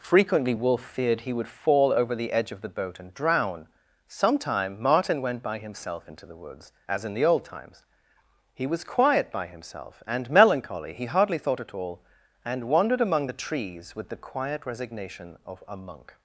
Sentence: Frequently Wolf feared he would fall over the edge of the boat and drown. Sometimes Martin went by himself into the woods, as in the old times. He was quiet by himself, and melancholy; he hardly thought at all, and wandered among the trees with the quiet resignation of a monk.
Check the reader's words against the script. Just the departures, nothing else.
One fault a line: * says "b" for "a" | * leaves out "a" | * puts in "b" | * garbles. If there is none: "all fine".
* says "Sometime" for "Sometimes"